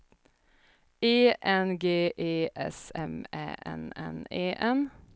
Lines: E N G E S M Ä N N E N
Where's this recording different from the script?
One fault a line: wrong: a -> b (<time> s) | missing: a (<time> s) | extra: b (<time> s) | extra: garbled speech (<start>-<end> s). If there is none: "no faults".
no faults